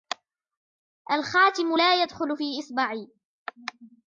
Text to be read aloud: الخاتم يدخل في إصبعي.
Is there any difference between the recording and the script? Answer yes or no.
yes